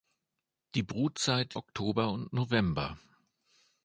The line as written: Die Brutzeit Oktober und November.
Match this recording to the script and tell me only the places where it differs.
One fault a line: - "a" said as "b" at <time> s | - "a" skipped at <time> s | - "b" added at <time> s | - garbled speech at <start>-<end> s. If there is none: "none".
none